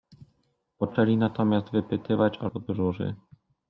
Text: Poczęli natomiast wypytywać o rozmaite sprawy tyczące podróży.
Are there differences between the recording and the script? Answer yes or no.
yes